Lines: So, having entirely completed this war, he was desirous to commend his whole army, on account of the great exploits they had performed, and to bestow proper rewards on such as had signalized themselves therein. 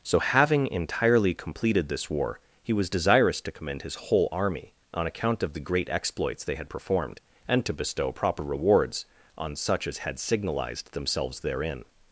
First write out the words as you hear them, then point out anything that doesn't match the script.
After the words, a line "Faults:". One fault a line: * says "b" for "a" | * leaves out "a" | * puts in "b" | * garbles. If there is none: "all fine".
So, having entirely completed this war, he was desirous to commend his whole army, on account of the great exploits they had performed, and to bestow proper rewards on such as had signalized themselves therein.
Faults:
all fine